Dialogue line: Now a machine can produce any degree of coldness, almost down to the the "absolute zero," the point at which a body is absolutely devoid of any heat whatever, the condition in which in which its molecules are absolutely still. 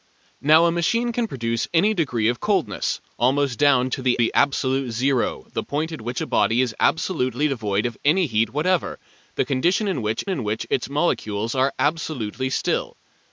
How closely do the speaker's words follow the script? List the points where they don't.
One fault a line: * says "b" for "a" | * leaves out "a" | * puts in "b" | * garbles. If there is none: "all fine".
all fine